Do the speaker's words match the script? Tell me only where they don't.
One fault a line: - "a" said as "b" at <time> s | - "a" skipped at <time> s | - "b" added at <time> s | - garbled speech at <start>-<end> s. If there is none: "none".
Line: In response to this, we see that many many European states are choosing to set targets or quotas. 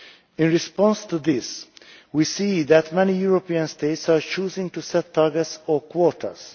- "many" skipped at 3.1 s